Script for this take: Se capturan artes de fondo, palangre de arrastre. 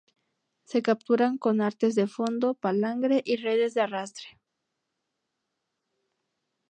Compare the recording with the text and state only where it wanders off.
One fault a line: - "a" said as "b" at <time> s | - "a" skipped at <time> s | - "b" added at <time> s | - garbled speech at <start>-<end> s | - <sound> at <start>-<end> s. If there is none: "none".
- "con" added at 1.4 s
- "y redes" added at 3.3 s